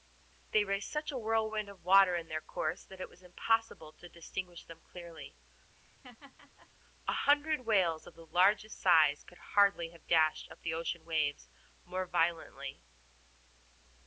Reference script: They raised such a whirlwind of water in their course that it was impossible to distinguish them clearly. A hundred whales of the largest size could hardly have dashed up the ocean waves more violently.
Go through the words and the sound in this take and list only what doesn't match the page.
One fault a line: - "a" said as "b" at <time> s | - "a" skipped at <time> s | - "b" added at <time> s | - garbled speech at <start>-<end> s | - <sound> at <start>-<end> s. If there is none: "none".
- laugh at 5.7-6.7 s